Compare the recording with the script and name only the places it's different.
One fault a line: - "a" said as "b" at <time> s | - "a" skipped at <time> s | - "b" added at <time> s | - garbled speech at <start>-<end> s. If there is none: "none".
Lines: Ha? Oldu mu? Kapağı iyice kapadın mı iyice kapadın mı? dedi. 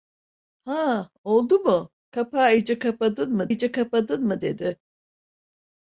none